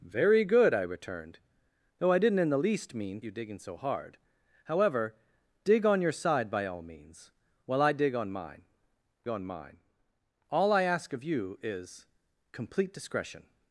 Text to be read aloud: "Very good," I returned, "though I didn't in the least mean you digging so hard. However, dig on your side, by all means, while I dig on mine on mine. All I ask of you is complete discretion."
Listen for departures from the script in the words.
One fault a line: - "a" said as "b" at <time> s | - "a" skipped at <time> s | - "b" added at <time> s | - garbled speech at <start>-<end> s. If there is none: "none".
none